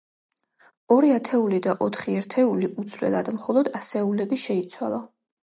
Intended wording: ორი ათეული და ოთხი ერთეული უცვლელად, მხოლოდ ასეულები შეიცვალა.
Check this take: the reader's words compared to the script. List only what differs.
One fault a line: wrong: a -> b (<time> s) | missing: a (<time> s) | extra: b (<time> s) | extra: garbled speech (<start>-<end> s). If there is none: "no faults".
no faults